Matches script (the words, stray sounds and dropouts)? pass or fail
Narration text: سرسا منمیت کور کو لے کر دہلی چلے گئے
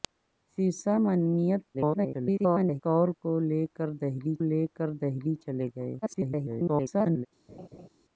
fail